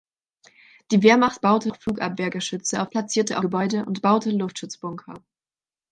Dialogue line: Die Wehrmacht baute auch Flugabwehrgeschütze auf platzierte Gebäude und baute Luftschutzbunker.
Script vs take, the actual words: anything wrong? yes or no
no